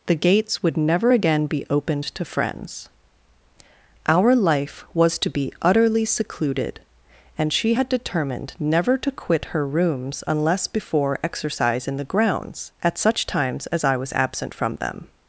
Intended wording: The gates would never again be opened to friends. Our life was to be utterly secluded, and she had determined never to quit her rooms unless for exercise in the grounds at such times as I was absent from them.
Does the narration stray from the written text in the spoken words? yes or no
yes